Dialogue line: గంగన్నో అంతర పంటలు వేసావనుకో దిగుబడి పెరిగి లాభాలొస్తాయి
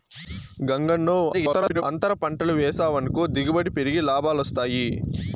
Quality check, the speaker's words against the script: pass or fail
fail